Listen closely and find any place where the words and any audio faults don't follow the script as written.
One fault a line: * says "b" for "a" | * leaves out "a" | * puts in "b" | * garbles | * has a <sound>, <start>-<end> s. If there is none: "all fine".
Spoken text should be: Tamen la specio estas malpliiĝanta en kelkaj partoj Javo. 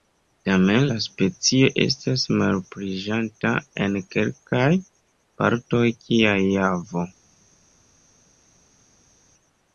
* puts in "kiaj"